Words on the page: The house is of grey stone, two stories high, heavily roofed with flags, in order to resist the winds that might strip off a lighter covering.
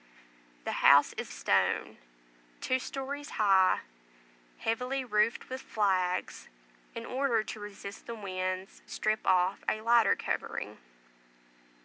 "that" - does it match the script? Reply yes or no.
no